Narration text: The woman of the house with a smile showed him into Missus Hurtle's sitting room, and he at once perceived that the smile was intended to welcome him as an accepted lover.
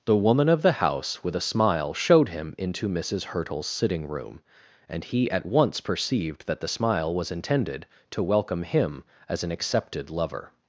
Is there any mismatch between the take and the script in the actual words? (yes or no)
no